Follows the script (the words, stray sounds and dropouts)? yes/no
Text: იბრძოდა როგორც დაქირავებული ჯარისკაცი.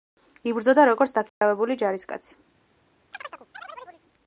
no